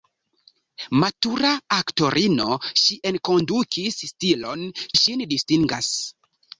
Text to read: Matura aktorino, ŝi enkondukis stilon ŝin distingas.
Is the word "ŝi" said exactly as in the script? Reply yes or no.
yes